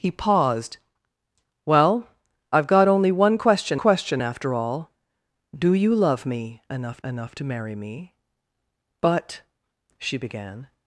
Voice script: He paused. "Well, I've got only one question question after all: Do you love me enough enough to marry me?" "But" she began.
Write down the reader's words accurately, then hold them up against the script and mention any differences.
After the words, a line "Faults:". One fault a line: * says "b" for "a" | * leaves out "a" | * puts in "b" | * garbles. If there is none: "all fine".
He paused. "Well, I've got only one question question after all: Do you love me enough enough to marry me?" "But" she began.
Faults:
all fine